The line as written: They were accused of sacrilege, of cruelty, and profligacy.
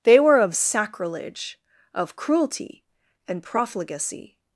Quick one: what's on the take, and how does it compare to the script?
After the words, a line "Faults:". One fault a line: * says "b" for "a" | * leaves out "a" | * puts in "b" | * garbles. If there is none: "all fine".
They were of sacrilege, of cruelty, and profligacy.
Faults:
* leaves out "accused"